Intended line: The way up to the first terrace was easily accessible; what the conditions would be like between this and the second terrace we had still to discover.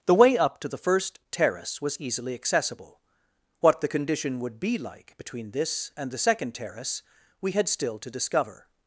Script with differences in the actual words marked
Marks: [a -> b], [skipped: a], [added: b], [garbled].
The way up to the first terrace was easily accessible; what the [conditions -> condition] would be like between this and the second terrace we had still to discover.